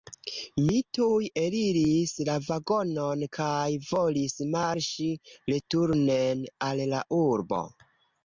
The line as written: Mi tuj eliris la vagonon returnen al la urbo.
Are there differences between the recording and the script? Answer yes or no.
yes